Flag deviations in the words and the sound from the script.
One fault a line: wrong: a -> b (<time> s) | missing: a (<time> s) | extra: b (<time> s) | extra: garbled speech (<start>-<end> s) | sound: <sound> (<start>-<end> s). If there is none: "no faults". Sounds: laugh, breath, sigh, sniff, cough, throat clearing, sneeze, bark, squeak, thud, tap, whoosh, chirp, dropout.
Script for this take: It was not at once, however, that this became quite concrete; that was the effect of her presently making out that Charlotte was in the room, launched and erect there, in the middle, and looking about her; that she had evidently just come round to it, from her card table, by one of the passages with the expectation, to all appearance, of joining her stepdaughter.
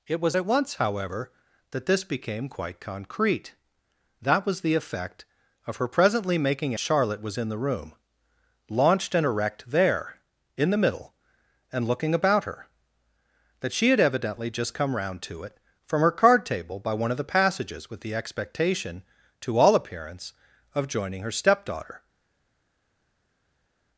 missing: not (0.4 s)
missing: out that (6.7 s)